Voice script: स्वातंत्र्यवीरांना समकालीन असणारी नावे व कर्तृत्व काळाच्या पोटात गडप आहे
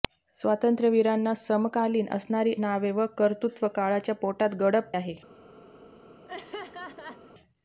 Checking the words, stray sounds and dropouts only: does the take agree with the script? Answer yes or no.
no